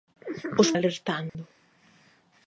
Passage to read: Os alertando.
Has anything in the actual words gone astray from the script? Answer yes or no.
no